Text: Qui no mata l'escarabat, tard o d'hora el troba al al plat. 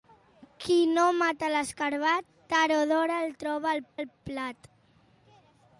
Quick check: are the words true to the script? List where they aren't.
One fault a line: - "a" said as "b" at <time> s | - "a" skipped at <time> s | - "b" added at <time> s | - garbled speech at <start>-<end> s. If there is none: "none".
none